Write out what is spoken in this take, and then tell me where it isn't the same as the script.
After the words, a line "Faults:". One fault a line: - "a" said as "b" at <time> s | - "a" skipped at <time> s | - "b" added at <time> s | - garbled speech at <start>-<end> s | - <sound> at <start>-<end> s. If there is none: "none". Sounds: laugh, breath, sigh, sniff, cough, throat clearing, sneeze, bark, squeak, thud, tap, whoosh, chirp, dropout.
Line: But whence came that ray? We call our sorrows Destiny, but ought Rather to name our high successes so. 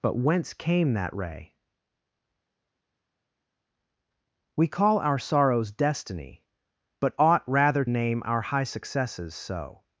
But whence came that ray? We call our sorrows Destiny, but ought Rather name our high successes so.
Faults:
- "to" skipped at 7.8 s